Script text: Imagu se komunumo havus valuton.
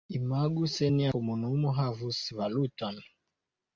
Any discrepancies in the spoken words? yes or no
yes